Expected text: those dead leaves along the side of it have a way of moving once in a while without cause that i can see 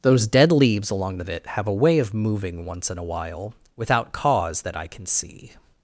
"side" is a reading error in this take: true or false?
true